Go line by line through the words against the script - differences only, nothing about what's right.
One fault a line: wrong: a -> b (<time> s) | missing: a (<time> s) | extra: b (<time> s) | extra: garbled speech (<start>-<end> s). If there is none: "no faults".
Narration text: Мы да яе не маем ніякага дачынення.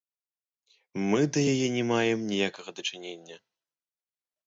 no faults